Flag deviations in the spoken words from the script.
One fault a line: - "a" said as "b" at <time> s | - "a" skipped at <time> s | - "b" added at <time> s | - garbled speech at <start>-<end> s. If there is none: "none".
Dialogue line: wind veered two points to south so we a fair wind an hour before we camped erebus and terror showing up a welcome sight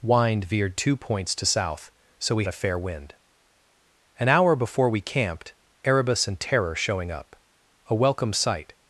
none